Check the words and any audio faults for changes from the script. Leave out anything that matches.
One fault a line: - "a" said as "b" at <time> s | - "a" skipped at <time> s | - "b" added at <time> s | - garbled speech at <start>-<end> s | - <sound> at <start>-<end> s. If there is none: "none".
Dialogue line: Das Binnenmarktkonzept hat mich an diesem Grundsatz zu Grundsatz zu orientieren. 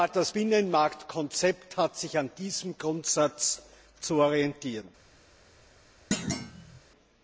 - "mich" said as "sich" at 2.0 s
- "Grundsatz zu" skipped at 4.2 s
- thud at 6.1-6.8 s